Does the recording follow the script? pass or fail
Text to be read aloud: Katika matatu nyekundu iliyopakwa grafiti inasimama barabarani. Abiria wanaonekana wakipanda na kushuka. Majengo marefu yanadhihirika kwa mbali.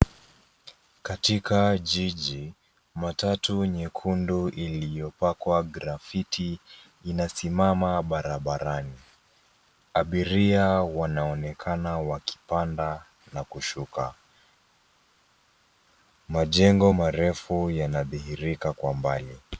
fail